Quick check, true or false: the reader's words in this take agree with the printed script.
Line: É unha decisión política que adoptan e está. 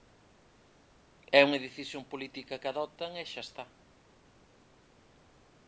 false